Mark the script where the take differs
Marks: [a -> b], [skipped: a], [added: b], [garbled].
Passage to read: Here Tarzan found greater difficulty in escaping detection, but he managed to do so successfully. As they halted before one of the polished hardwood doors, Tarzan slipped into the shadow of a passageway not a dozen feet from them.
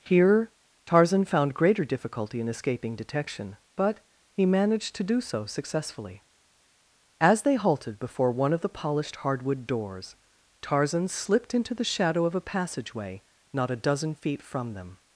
Here Tarzan found greater difficulty in escaping detection, but he managed to do so successfully. As they halted before one of the polished hardwood doors, Tarzan slipped into the shadow of a passageway not a dozen feet from them.